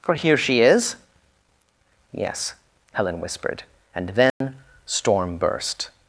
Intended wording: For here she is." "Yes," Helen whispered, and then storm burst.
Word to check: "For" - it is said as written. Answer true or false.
true